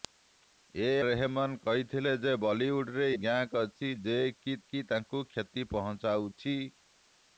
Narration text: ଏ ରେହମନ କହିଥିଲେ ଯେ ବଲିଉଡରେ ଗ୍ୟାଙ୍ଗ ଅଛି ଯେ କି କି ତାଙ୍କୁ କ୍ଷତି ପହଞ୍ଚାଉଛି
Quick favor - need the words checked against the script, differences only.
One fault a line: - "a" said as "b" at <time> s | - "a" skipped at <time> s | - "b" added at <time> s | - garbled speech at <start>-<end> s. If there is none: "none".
none